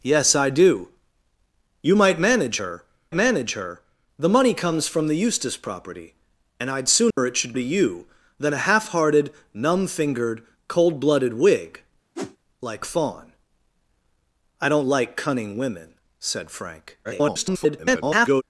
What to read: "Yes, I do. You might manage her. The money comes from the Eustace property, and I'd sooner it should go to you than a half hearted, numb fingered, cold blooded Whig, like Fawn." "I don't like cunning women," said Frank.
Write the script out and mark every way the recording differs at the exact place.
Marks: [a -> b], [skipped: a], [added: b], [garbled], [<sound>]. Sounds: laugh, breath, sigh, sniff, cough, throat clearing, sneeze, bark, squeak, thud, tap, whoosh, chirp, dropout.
"Yes, I do. You might manage her. [added: manage her] The money comes from the Eustace property, and I'd sooner [dropout] it should [skipped: go] to you than a half hearted, numb fingered, cold blooded Whig, [whoosh] like Fawn." "I don't like cunning women," said Frank. [garbled]